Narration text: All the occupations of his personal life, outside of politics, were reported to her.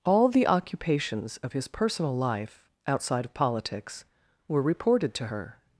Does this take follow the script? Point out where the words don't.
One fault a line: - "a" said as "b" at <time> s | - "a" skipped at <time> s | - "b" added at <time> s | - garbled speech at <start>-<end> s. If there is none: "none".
none